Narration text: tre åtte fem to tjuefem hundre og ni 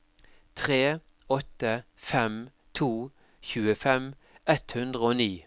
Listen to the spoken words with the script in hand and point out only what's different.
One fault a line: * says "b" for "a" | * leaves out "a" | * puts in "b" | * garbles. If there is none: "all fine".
* puts in "ett"